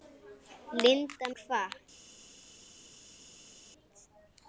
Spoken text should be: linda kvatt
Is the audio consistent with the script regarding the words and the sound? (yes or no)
yes